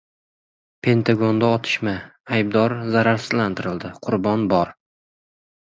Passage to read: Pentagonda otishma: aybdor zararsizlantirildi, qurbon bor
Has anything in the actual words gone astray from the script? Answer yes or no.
no